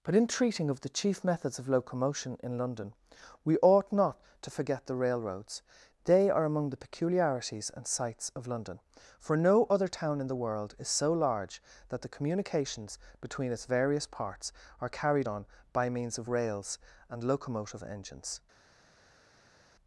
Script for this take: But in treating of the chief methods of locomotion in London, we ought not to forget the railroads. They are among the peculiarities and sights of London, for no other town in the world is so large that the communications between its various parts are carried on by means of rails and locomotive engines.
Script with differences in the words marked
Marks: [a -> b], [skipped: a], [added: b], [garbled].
But in treating of the chief methods of locomotion in London, we ought not to forget the railroads. They are among the peculiarities and sights of London, for no other town in the world is so large that the communications between its various parts are carried on by means of rails and locomotive engines.